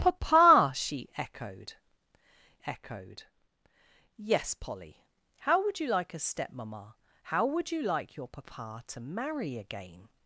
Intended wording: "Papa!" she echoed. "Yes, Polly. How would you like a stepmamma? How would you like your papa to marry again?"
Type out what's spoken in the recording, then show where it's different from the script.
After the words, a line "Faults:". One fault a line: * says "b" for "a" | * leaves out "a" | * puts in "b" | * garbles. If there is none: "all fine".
"Papa!" she echoed echoed. "Yes, Polly. How would you like a stepmamma? How would you like your papa to marry again?"
Faults:
* puts in "echoed"